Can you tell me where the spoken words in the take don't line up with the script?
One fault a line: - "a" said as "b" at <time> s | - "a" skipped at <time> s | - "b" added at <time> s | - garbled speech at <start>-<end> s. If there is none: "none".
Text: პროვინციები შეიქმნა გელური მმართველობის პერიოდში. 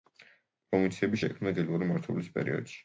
none